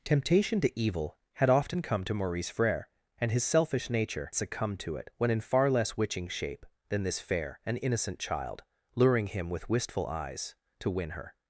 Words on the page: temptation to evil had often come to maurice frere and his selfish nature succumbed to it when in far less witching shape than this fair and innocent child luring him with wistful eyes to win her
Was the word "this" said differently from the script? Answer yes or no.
no